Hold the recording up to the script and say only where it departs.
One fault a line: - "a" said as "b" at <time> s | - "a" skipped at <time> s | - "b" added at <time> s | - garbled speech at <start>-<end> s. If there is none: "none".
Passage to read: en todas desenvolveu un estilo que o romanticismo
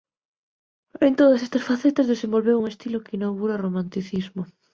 - "estas facetas" added at 1.5 s
- "inaugura" added at 3.2 s